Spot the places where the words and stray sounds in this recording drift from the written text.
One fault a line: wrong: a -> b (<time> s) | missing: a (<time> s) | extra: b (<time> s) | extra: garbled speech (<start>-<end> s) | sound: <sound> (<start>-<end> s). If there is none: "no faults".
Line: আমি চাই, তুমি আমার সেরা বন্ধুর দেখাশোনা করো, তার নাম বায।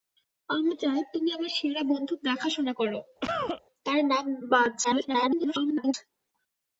sound: cough (3.2-3.6 s)
extra: garbled speech (4.8-5.9 s)